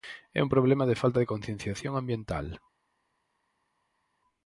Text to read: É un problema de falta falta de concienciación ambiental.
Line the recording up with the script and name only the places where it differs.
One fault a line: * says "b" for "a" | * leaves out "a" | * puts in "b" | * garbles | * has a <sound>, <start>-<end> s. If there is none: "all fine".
* leaves out "falta"